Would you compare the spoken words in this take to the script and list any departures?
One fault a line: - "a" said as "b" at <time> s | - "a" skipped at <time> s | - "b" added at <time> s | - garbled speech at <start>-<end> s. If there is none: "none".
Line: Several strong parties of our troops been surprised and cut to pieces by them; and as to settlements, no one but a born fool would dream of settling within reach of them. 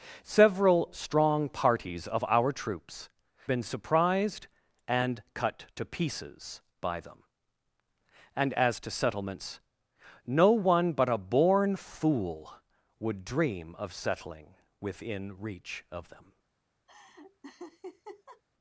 none